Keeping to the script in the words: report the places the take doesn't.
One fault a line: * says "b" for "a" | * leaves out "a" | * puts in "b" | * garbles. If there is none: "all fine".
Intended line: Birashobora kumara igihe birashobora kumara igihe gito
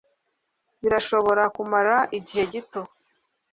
* leaves out "birashobora kumara igihe"